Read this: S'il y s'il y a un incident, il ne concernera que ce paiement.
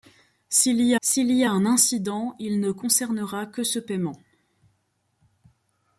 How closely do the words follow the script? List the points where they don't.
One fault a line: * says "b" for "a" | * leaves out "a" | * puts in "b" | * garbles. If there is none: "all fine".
all fine